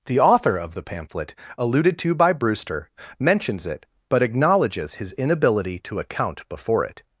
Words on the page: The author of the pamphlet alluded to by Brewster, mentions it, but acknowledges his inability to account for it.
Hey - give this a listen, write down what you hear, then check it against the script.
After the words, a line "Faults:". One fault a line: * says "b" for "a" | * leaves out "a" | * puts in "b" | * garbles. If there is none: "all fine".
The author of the pamphlet alluded to by Brewster, mentions it, but acknowledges his inability to account before it.
Faults:
* says "before" for "for"